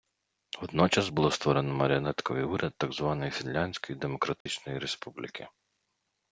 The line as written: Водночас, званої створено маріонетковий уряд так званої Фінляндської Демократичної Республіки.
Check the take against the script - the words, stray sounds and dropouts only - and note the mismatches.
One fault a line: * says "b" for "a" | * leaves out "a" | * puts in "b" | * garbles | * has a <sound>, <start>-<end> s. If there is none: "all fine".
* says "було" for "званої"
* has a dropout, 4.4-4.5 s